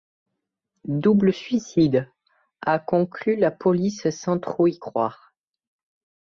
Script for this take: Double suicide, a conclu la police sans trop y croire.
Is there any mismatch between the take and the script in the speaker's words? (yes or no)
no